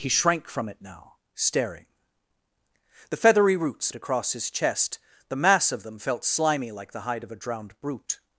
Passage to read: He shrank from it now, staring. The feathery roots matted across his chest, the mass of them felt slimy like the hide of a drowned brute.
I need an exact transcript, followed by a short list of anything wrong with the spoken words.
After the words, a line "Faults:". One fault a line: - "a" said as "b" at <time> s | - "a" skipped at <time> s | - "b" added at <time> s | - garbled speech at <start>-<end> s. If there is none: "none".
He shrank from it now, staring. The feathery roots across his chest, the mass of them felt slimy like the hide of a drowned brute.
Faults:
- "matted" skipped at 3.9 s